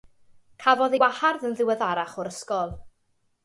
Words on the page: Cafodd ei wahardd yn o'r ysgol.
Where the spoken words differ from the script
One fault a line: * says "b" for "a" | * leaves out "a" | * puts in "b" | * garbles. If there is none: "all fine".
* puts in "ddiweddarach"